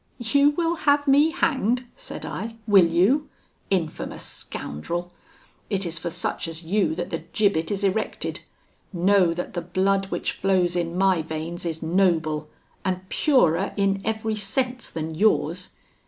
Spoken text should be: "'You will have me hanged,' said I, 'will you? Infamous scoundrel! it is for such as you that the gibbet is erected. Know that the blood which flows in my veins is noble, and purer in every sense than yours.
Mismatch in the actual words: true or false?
false